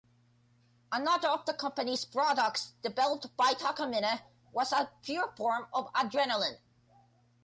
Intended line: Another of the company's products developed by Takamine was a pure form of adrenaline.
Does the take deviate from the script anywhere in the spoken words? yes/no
no